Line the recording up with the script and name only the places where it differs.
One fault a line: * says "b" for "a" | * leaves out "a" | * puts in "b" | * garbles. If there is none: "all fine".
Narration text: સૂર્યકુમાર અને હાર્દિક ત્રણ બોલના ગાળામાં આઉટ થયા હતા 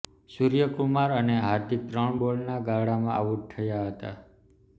all fine